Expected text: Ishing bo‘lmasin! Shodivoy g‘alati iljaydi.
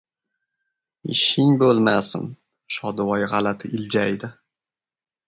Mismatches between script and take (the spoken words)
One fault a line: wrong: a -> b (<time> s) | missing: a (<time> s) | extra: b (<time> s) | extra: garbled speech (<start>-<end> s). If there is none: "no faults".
no faults